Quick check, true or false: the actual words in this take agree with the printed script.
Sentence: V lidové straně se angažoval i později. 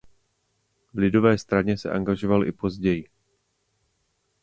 true